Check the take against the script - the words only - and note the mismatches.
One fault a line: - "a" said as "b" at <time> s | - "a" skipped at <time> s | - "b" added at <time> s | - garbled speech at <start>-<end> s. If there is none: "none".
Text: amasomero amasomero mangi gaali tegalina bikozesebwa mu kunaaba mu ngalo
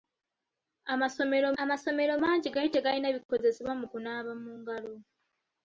none